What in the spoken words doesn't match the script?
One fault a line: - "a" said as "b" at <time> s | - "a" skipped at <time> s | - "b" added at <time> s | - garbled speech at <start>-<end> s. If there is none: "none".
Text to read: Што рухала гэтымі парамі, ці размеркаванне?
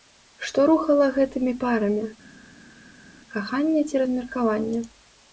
- "каханне" added at 3.4 s